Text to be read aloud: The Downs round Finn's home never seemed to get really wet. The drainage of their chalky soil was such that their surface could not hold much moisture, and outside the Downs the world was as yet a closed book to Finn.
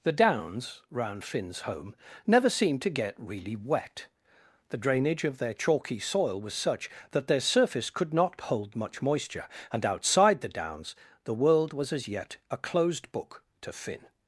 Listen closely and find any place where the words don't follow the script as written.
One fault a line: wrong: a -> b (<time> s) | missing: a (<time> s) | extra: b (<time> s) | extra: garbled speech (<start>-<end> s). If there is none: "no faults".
no faults